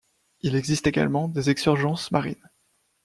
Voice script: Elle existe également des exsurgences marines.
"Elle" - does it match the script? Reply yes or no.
no